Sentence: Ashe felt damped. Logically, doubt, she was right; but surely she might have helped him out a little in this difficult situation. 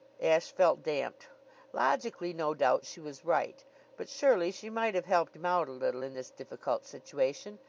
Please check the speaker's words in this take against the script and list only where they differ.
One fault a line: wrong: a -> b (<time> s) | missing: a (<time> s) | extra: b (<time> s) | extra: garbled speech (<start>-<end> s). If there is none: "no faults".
extra: no (2.3 s)